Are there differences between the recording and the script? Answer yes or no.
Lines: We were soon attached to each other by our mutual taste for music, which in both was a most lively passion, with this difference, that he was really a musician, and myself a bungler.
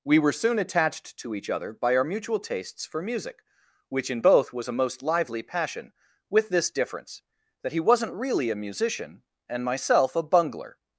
yes